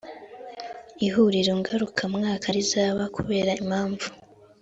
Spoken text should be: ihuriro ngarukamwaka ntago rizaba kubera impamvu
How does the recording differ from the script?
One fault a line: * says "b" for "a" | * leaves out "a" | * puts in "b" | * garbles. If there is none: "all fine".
* leaves out "ntago"